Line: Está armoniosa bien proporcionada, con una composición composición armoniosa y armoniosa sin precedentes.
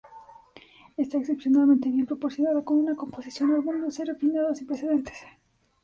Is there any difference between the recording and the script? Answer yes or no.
yes